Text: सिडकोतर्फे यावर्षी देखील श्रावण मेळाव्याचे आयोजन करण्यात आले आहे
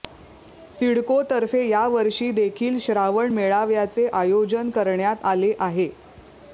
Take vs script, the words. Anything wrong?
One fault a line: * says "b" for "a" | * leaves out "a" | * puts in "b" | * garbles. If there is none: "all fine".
all fine